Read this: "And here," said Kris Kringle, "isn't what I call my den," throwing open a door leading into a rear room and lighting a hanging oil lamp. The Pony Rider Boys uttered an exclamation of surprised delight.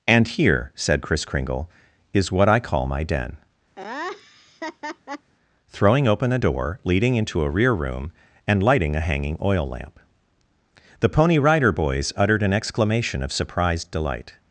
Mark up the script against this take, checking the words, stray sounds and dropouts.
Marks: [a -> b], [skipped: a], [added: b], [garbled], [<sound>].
"And here," said Kris Kringle, ["isn't -> is] what I call my den," [laugh] throwing open a door leading into a rear room and lighting a hanging oil lamp. The Pony Rider Boys uttered an exclamation of surprised delight.